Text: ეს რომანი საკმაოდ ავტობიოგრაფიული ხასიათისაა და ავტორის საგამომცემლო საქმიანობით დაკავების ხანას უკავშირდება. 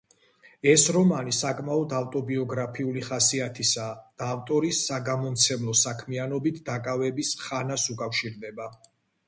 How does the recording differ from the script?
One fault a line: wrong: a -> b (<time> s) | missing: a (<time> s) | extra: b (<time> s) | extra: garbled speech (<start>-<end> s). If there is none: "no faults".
no faults